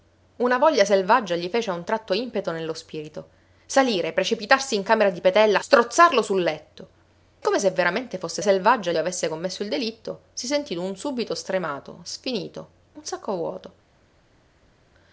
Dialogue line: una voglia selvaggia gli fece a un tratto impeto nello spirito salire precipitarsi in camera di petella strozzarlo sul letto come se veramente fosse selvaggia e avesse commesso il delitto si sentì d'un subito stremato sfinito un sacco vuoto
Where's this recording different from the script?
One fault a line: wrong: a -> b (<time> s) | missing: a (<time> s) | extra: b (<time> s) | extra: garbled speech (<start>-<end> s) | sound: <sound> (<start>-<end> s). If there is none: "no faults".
no faults